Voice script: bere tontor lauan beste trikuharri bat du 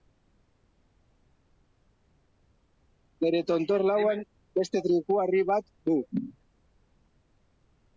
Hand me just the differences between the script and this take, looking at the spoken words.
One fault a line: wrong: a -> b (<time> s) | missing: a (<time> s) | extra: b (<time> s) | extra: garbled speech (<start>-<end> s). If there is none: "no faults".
no faults